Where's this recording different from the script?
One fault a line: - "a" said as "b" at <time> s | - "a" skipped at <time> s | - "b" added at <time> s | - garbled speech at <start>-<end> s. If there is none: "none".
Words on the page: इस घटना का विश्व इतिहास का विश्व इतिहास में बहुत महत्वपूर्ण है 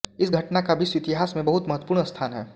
- "का विश्व इतिहास" skipped at 1.3 s
- "स्थान" added at 2.0 s